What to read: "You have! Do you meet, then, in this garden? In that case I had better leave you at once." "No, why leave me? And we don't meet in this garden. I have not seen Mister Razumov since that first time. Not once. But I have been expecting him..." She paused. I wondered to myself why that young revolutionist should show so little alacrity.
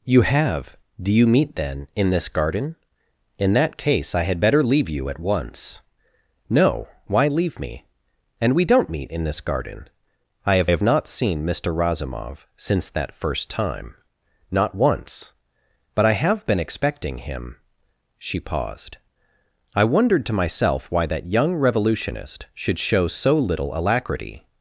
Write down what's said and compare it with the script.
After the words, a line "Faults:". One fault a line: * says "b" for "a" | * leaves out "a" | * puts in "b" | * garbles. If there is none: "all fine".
"You have! Do you meet, then, in this garden? In that case I had better leave you at once." "No, why leave me? And we don't meet in this garden. I have have not seen Mister Razumov since that first time. Not once. But I have been expecting him..." She paused. I wondered to myself why that young revolutionist should show so little alacrity.
Faults:
* puts in "have"